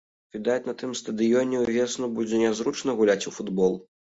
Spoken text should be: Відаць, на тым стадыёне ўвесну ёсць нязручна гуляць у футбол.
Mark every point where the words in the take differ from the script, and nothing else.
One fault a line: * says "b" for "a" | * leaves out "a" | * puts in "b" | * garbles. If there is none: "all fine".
* says "будзе" for "ёсць"